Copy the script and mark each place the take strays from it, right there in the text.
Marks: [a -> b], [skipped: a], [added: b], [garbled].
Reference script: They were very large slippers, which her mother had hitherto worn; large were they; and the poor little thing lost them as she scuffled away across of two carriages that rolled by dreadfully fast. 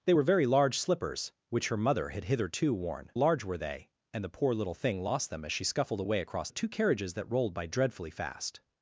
They were very large slippers, which her mother had hitherto worn; large were they; and the poor little thing lost them as she scuffled away across of two carriages that rolled by dreadfully fast.